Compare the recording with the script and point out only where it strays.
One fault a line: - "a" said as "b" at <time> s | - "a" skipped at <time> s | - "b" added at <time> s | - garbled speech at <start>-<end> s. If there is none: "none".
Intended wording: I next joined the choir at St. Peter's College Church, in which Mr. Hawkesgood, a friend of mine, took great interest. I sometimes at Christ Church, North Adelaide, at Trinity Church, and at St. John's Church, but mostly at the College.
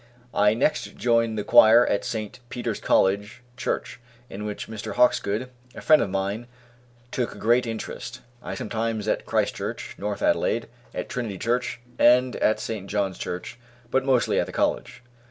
none